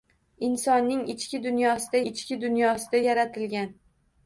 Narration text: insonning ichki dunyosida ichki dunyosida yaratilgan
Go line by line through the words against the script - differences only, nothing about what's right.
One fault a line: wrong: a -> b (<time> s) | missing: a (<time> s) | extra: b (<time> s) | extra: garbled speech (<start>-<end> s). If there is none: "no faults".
no faults